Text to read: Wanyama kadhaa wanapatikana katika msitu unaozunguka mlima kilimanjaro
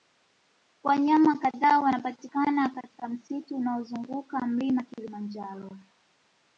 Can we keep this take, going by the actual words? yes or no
yes